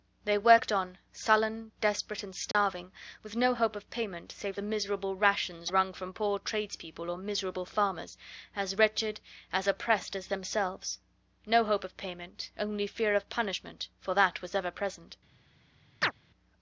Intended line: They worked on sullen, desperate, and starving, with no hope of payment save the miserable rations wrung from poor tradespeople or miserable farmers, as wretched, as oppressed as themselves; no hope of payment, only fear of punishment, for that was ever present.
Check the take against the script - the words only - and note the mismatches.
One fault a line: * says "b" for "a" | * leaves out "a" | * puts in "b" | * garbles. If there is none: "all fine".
all fine